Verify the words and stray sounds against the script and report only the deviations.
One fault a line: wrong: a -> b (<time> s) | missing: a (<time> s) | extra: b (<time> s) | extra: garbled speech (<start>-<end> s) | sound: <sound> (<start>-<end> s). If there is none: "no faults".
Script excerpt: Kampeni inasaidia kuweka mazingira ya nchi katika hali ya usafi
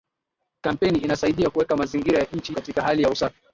no faults